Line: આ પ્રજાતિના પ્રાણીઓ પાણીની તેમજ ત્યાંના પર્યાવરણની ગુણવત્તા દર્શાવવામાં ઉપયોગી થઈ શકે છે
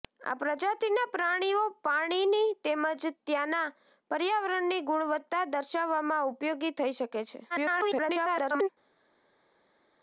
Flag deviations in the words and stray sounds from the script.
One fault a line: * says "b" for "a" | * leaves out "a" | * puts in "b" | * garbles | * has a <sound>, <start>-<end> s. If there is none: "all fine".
* garbles